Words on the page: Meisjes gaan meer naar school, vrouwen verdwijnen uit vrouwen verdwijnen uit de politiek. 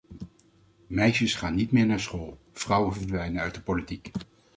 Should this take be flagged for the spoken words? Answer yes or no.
yes